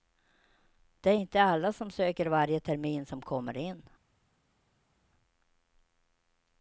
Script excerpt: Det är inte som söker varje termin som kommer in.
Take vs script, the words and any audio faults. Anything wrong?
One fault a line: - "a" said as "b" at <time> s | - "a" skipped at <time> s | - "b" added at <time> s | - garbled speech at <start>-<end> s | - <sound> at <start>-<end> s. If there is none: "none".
- "alla" added at 1.4 s